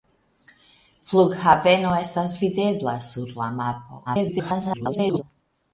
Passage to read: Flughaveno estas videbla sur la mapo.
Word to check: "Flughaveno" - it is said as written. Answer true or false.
true